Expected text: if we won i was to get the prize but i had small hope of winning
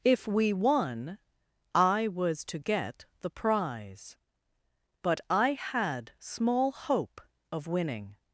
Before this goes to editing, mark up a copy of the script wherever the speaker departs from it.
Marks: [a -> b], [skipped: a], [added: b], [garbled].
if we won i was to get the prize but i had small hope of winning